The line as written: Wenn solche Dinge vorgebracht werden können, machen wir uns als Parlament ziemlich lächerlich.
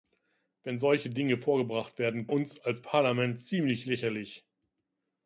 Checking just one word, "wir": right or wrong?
wrong